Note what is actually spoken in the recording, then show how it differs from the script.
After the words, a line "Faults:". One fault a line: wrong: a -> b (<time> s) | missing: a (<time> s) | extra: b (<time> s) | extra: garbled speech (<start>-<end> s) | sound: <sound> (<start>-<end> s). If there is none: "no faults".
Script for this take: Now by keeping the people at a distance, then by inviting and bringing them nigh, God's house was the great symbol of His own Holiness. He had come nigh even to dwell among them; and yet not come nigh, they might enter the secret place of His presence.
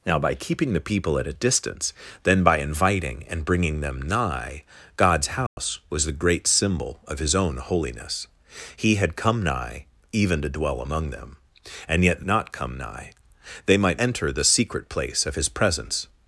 Now by keeping the people at a distance, then by inviting and bringing them nigh, God's house was the great symbol of His own Holiness. He had come nigh even to dwell among them; and yet not come nigh, they might enter the secret place of His presence.
Faults:
sound: dropout (5.5-5.6 s)